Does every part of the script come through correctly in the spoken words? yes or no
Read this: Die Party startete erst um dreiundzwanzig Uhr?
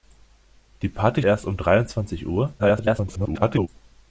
no